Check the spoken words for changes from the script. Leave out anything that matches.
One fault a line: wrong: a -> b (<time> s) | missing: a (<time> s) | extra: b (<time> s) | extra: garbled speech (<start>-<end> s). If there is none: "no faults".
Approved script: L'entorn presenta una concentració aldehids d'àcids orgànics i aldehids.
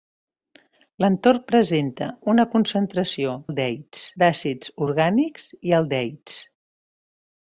no faults